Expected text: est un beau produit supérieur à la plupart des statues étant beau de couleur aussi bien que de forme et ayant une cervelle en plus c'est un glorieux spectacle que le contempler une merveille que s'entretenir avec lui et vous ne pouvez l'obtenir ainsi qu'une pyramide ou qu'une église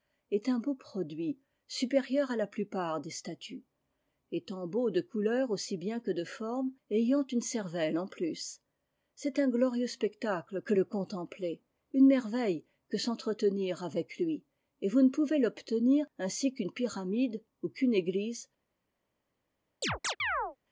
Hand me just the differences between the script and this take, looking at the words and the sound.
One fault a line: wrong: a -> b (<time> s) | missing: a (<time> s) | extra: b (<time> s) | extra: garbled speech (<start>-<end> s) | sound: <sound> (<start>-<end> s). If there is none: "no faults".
sound: chirp (19.8-20.6 s)